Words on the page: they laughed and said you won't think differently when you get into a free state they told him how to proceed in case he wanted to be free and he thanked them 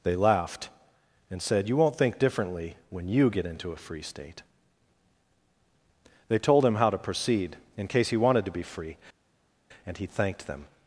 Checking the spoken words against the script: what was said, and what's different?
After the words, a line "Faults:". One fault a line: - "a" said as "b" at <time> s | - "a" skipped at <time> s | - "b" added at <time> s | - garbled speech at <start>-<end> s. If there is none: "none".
they laughed and said you won't think differently when you get into a free state they told him how to proceed in case he wanted to be free and he thanked them
Faults:
none